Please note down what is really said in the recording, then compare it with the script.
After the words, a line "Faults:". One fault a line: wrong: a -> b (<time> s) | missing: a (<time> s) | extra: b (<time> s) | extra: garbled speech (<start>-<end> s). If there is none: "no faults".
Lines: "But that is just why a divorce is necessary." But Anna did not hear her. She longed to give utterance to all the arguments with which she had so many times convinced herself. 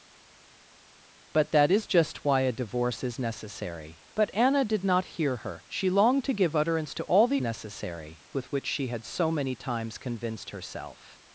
"But that is just why a divorce is necessary." But Anna did not hear her. She longed to give utterance to all the necessary with which she had so many times convinced herself.
Faults:
wrong: arguments -> necessary (7.4 s)